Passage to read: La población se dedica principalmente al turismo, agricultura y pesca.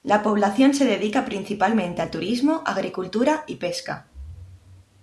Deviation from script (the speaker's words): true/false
false